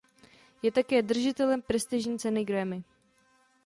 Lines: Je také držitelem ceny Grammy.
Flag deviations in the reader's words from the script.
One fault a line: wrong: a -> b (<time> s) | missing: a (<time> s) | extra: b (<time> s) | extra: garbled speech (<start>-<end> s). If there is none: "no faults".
extra: prestižní (1.6 s)